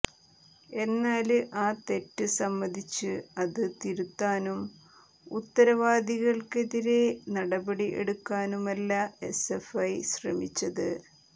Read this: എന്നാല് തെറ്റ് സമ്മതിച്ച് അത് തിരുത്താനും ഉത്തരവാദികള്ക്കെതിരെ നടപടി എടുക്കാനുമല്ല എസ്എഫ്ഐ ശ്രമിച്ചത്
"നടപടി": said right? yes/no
yes